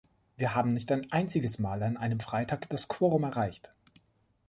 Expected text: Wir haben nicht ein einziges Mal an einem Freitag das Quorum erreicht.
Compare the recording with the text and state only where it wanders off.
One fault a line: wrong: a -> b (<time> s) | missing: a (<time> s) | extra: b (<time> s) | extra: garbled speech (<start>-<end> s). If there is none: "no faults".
no faults